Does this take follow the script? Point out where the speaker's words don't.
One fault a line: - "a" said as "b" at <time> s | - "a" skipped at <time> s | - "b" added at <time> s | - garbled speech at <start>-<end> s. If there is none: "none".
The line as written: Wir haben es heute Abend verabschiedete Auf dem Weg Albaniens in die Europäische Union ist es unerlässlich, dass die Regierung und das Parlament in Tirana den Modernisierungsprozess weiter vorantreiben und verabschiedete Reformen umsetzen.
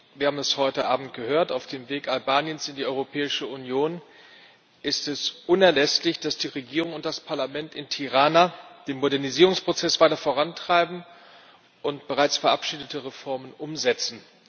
- "verabschiedete" said as "gehört" at 1.1 s
- "bereits" added at 12.1 s